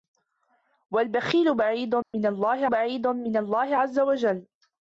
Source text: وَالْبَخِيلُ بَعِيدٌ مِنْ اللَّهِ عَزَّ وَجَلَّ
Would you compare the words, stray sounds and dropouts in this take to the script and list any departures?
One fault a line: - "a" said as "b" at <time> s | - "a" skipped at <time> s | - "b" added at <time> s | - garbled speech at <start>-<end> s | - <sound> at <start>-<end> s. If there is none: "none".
- dropout at 2.0-2.1 s
- "بَعِيدٌ مِنْ اللَّهِ" added at 2.7 s